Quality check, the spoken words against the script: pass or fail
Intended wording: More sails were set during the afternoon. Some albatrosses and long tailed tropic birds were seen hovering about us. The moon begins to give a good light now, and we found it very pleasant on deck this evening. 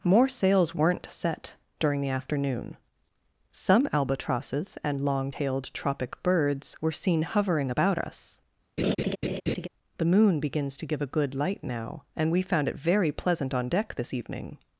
fail